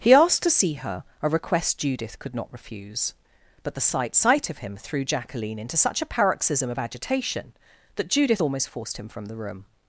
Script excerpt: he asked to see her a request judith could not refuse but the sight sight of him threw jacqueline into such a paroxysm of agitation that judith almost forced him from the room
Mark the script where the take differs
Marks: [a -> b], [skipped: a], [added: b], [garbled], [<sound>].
he asked to see her a request judith could not refuse but the sight sight of him threw jacqueline into such a paroxysm of agitation that judith almost forced him from the room